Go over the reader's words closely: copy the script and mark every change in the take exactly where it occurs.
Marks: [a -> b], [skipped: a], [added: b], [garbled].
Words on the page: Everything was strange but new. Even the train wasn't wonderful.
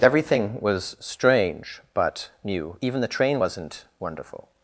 Everything was strange but new. Even the train wasn't wonderful.